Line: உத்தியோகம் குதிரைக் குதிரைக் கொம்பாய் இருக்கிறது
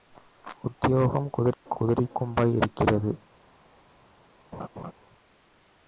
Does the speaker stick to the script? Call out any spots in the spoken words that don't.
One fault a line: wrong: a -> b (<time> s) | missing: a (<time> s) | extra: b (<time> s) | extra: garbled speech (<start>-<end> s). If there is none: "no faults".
no faults